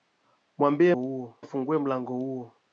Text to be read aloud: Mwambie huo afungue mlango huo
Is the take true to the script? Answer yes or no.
yes